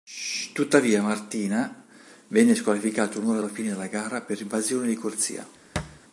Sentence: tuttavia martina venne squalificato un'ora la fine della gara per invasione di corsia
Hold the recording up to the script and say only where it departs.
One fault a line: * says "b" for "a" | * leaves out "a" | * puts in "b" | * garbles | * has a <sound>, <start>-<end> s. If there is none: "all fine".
* has a thud, 5.8-6.0 s